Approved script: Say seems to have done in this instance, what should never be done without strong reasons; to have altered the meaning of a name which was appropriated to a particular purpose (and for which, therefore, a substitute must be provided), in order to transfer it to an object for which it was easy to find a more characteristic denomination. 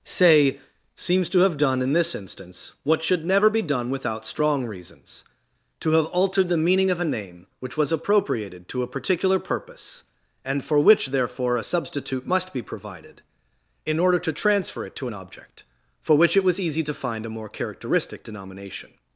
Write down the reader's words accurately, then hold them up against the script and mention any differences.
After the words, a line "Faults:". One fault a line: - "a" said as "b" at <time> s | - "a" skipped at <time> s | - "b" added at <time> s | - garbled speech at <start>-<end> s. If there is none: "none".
Say seems to have done in this instance, what should never be done without strong reasons; to have altered the meaning of a name which was appropriated to a particular purpose (and for which, therefore, a substitute must be provided), in order to transfer it to an object for which it was easy to find a more characteristic denomination.
Faults:
none